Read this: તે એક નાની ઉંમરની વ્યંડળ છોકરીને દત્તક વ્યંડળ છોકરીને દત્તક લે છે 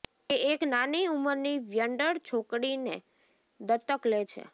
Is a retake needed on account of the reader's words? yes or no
yes